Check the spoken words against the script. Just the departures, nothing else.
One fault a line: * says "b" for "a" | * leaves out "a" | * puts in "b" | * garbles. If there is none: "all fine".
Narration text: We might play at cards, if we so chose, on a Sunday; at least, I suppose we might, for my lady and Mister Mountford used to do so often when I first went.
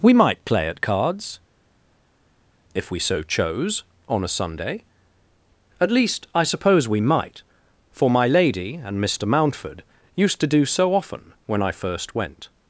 all fine